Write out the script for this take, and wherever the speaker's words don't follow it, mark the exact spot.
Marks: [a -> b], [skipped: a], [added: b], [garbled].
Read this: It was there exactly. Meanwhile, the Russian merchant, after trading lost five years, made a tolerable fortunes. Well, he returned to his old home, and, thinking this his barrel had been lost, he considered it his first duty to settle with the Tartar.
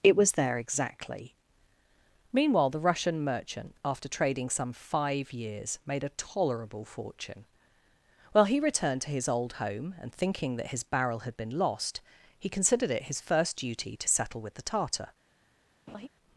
It was there exactly. Meanwhile, the Russian merchant, after trading [lost -> some] five years, made a tolerable [fortunes. -> fortune] Well, he returned to his old home, and, thinking [this -> that] his barrel had been lost, he considered it his first duty to settle with the Tartar.